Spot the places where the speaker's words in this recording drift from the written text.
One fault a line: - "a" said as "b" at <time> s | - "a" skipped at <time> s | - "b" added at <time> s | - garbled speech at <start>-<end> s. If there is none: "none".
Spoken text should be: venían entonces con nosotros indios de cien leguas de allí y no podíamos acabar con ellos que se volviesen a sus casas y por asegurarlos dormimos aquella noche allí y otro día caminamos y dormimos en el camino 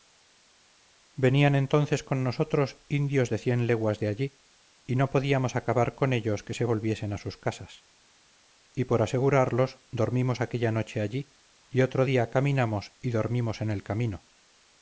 none